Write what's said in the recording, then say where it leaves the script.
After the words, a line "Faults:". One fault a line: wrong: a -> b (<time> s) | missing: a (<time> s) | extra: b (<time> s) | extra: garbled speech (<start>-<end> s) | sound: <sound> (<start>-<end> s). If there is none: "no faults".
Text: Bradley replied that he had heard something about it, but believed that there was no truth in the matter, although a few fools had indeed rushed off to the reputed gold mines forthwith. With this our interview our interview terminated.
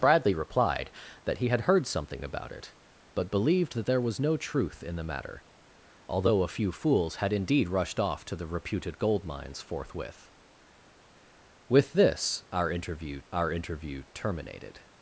Bradley replied that he had heard something about it, but believed that there was no truth in the matter, although a few fools had indeed rushed off to the reputed gold mines forthwith. With this our interview our interview terminated.
Faults:
no faults